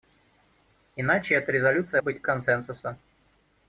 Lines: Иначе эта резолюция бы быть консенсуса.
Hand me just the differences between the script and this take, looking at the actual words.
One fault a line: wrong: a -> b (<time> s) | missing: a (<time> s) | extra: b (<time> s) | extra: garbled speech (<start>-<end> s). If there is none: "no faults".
no faults